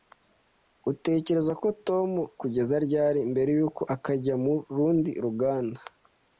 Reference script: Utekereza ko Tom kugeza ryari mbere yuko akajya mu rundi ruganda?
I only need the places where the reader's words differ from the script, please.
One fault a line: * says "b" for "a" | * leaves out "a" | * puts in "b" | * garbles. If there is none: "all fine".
all fine